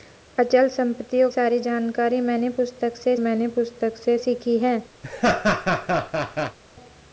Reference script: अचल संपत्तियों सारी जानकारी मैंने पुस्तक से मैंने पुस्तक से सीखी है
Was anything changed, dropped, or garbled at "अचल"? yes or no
no